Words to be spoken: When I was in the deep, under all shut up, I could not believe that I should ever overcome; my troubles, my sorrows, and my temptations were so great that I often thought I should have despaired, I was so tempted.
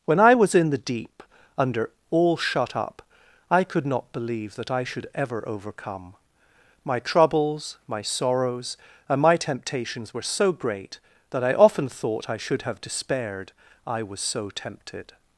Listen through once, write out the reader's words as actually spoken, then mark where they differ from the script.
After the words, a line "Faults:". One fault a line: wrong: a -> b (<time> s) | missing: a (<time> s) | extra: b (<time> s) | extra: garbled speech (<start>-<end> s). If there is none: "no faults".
When I was in the deep, under all shut up, I could not believe that I should ever overcome; my troubles, my sorrows, and my temptations were so great that I often thought I should have despaired, I was so tempted.
Faults:
no faults